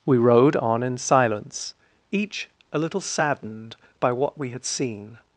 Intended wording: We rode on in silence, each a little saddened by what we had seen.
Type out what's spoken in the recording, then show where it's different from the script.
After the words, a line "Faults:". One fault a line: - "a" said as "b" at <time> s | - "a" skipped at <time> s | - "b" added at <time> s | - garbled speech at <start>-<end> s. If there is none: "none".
We rode on in silence, each a little saddened by what we had seen.
Faults:
none